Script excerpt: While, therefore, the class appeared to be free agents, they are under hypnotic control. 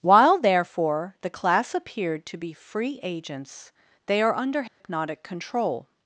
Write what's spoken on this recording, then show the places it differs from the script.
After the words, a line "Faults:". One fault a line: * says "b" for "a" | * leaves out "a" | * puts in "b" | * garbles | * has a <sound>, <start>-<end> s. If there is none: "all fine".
While, therefore, the class appeared to be free agents, they are under hypnotic control.
Faults:
* has a dropout, 4.7-4.8 s